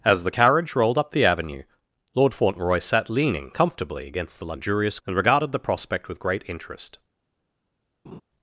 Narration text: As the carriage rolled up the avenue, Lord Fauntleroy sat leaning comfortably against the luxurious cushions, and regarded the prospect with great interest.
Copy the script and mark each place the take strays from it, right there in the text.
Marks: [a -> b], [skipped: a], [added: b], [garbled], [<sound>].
As the carriage rolled up the avenue, Lord Fauntleroy sat leaning comfortably against the luxurious [skipped: cushions,] and regarded the prospect with great interest. [laugh]